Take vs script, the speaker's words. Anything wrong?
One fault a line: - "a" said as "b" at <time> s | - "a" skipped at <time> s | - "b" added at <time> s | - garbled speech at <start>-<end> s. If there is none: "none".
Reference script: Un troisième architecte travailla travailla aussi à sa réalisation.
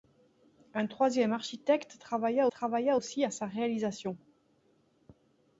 none